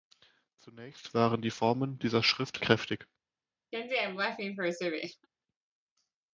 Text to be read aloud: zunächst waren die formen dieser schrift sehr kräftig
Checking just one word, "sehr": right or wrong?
wrong